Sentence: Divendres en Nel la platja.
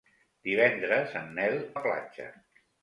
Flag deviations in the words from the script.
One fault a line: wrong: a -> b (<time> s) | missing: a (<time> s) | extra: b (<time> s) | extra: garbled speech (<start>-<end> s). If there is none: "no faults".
no faults